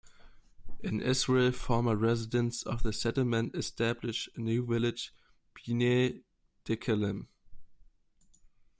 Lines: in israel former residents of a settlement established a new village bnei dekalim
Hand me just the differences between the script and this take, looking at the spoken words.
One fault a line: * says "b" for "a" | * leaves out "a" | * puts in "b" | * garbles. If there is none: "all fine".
* says "the" for "a"